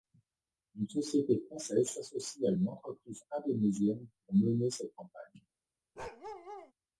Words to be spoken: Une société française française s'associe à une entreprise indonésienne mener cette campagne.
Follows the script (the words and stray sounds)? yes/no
no